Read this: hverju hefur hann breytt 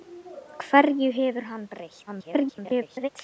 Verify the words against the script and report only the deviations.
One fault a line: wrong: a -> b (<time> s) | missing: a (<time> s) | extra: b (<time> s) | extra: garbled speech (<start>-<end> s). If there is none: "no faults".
extra: garbled speech (2.1-3.1 s)